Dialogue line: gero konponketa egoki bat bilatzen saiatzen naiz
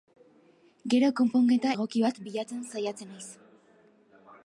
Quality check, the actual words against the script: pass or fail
pass